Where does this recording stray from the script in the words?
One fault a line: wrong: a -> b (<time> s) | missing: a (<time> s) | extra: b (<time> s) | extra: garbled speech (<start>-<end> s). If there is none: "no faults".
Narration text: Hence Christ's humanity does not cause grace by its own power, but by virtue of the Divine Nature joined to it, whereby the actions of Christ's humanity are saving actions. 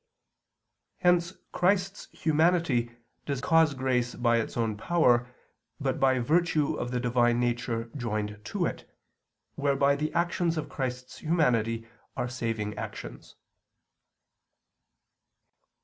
missing: not (3.4 s)